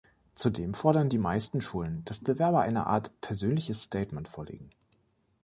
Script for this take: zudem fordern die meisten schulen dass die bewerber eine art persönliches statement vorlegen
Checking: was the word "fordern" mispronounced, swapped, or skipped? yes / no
no